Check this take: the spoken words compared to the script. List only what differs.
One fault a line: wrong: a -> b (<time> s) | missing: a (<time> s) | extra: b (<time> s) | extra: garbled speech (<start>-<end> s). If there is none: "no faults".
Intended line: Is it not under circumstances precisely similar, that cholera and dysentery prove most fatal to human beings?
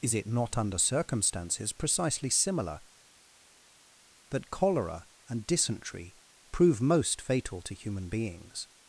no faults